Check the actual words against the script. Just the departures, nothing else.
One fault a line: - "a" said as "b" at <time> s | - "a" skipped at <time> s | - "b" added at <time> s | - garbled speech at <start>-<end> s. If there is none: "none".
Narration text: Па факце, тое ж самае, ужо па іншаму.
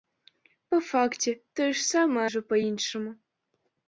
none